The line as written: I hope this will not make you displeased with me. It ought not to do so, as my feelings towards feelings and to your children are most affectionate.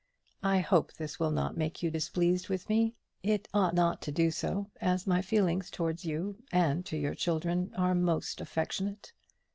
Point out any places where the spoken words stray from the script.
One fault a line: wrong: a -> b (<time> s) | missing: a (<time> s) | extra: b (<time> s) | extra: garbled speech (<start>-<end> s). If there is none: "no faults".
wrong: feelings -> you (6.0 s)